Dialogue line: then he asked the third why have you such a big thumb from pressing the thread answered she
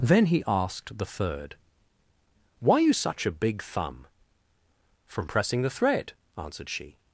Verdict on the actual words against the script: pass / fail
fail